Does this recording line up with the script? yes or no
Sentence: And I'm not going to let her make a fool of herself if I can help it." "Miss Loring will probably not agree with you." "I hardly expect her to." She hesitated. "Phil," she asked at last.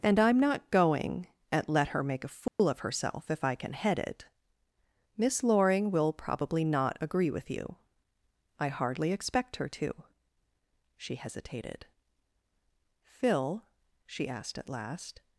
no